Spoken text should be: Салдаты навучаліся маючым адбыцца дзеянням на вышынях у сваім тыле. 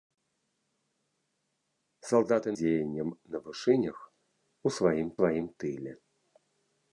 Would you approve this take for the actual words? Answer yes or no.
no